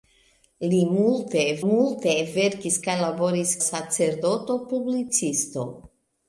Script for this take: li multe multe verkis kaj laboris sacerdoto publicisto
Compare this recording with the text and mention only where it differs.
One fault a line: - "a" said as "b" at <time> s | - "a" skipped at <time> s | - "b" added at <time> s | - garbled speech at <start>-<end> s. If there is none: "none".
none